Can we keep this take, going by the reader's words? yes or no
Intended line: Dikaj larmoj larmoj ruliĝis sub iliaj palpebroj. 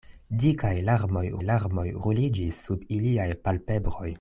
yes